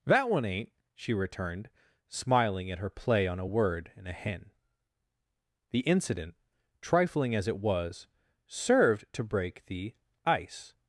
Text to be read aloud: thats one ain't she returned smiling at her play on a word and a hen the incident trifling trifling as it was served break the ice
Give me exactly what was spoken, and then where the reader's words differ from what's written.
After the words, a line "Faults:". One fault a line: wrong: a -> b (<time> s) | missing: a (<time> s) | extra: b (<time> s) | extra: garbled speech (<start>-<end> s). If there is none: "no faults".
that one ain't she returned smiling at her play on a word and a hen the incident trifling as it was served to break the ice
Faults:
wrong: thats -> that (0.1 s)
missing: trifling (7.4 s)
extra: to (9.1 s)